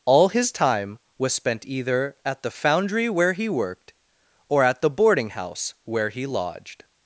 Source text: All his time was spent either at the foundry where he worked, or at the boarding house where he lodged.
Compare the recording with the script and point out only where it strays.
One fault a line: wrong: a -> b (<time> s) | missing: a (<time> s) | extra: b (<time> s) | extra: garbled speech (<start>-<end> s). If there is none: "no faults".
no faults